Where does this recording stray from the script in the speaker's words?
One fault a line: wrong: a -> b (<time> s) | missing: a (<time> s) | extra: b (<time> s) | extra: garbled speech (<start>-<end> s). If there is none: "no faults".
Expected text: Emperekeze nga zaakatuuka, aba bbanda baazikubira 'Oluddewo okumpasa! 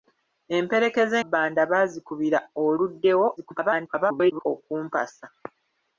missing: nga zaakatuuka aba (1.2 s)
extra: garbled speech (3.4-4.4 s)